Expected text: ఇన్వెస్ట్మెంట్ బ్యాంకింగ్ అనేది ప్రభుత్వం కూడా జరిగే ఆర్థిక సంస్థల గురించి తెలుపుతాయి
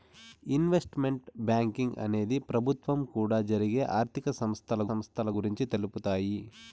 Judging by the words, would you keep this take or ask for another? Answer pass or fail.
fail